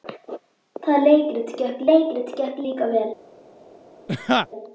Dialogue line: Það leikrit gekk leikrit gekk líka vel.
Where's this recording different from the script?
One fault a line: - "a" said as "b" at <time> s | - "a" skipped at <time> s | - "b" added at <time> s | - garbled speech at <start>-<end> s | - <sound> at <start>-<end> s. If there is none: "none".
- laugh at 4.1-4.5 s